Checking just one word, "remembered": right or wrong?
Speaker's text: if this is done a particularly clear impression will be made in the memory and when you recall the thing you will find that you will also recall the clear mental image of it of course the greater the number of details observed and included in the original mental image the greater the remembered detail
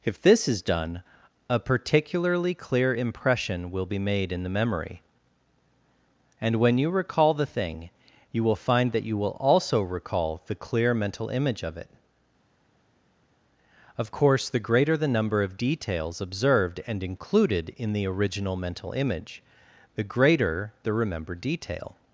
right